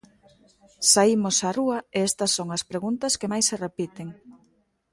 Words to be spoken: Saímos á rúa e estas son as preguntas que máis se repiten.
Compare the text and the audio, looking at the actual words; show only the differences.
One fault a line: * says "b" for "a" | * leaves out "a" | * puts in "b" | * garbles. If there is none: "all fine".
all fine